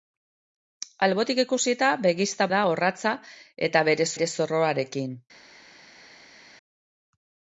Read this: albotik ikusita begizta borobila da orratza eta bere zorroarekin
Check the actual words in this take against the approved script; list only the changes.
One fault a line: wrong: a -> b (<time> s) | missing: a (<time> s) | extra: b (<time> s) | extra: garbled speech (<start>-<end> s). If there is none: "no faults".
missing: borobila (2.5 s)
extra: bere (4.2 s)